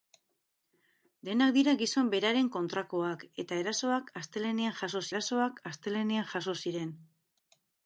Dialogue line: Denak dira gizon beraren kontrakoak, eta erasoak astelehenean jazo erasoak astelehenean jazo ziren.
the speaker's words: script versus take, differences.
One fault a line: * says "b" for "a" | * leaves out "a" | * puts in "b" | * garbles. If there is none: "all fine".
all fine